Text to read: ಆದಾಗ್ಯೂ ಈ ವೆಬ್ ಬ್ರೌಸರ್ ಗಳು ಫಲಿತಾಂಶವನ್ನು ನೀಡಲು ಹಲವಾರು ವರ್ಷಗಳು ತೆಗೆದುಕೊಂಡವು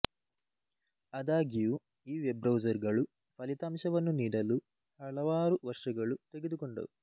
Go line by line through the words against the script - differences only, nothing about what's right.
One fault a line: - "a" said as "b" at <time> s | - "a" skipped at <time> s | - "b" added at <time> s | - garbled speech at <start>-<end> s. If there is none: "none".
none